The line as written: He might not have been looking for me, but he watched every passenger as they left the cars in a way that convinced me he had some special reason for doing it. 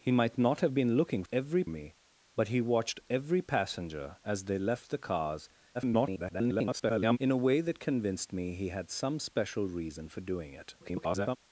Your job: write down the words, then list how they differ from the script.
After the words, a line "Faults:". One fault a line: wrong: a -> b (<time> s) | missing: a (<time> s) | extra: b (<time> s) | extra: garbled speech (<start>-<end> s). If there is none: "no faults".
He might not have been looking every me, but he watched every passenger as they left the cars [garbled] in a way that convinced me he had some special reason for doing it. [garbled]
Faults:
wrong: for -> every (1.3 s)
extra: garbled speech (5.7-7.2 s)
extra: garbled speech (10.8-11.4 s)